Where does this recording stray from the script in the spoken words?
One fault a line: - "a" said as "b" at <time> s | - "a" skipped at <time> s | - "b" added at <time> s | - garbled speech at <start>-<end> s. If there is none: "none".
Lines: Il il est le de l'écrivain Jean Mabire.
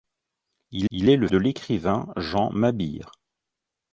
none